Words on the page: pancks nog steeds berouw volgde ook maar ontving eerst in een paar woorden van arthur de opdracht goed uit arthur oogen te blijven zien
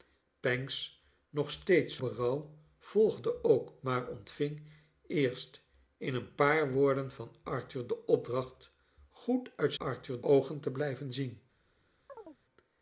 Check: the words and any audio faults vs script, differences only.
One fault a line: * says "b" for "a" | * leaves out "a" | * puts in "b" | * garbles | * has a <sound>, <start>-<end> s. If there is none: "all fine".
* has a chirp, 12.1-12.4 s